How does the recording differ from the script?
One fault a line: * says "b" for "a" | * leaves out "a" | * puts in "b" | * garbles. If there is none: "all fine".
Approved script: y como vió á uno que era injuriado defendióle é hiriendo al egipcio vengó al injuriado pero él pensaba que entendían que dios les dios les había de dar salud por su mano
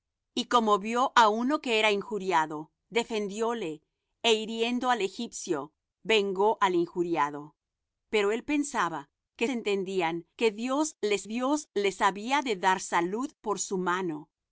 all fine